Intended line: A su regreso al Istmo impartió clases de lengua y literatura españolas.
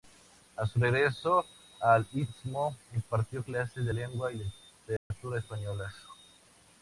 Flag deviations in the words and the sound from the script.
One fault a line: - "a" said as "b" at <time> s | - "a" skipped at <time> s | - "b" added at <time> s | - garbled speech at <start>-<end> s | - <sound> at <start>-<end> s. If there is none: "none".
- dropout at 5.0-5.1 s